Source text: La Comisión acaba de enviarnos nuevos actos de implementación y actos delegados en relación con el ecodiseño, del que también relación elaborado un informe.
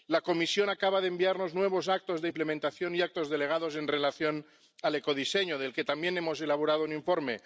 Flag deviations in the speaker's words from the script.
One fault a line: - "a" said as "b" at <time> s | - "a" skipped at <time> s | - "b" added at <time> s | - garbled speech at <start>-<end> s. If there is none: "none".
- "relación" said as "hemos" at 6.2 s